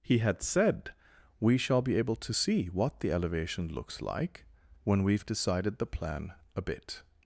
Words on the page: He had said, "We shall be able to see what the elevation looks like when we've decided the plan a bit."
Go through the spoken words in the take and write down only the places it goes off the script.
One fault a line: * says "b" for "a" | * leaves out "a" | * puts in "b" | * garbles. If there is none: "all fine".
all fine